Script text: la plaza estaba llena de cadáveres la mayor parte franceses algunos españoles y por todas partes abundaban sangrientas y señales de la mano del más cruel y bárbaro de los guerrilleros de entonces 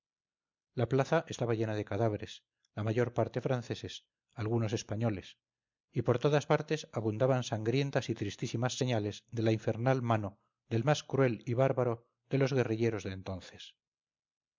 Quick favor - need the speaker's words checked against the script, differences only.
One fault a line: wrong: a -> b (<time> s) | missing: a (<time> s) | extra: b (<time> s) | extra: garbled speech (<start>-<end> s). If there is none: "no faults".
extra: tristísimas (8.1 s)
extra: infernal (9.5 s)